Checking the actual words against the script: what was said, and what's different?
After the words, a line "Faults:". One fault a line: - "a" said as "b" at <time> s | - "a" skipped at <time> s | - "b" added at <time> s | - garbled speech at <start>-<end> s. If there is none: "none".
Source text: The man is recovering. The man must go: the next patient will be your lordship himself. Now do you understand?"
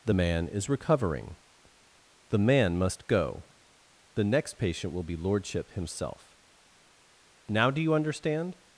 The man is recovering. The man must go: the next patient will be lordship himself. Now do you understand?"
Faults:
- "your" skipped at 5.2 s